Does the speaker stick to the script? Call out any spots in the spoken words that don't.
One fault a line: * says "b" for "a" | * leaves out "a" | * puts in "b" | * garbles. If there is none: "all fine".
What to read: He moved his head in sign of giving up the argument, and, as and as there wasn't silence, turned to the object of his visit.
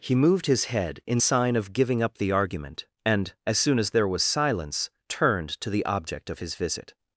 * says "soon" for "and"
* says "was" for "wasn't"